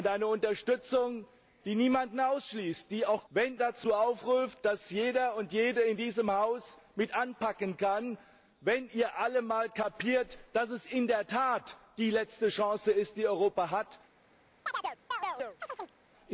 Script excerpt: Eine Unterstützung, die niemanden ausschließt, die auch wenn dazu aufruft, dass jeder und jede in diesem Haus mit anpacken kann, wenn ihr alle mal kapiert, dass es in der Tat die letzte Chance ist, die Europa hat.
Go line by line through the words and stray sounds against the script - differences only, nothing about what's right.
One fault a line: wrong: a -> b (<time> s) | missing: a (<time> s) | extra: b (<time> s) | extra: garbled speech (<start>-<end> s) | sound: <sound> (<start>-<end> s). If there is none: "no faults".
sound: chirp (14.7-16.0 s)